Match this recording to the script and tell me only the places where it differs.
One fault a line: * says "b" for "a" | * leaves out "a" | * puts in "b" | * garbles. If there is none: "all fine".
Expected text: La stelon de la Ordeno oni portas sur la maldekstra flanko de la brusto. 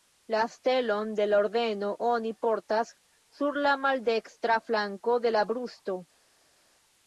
all fine